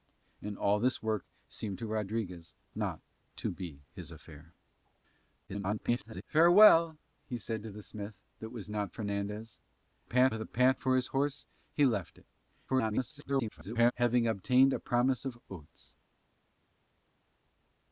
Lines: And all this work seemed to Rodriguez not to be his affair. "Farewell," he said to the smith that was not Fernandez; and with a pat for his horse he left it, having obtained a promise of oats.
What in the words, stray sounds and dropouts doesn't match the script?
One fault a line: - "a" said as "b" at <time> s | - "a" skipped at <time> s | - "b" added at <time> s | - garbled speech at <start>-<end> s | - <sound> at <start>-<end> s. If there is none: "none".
- garbled speech at 5.5-6.2 s
- "and" said as "pat" at 10.0 s
- garbled speech at 12.7-13.9 s